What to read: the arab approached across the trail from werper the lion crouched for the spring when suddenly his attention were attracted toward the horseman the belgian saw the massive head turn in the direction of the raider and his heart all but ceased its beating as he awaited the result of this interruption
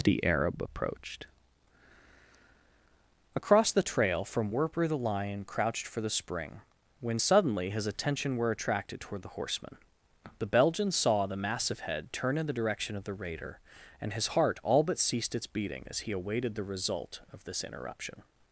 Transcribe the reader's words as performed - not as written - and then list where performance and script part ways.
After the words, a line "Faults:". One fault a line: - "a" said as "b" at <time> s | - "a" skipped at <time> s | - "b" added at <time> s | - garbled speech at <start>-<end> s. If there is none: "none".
the arab approached across the trail from werper the lion crouched for the spring when suddenly his attention were attracted toward the horseman the belgian saw the massive head turn in the direction of the raider and his heart all but ceased its beating as he awaited the result of this interruption
Faults:
none